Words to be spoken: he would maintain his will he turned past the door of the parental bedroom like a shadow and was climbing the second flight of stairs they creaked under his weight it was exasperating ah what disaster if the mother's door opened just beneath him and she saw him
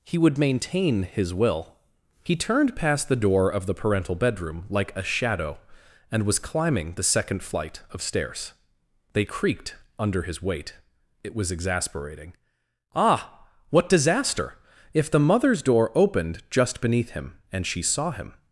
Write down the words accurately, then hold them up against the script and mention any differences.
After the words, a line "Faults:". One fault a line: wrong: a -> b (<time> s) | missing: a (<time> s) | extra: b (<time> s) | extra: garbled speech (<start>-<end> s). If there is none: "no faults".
he would maintain his will he turned past the door of the parental bedroom like a shadow and was climbing the second flight of stairs they creaked under his weight it was exasperating ah what disaster if the mother's door opened just beneath him and she saw him
Faults:
no faults